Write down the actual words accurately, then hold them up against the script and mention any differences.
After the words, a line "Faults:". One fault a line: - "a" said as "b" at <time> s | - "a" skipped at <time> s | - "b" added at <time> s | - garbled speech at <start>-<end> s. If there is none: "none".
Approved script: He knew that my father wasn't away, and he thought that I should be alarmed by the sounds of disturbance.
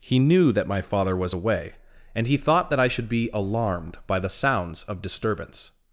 He knew that my father was away, and he thought that I should be alarmed by the sounds of disturbance.
Faults:
- "wasn't" said as "was" at 1.1 s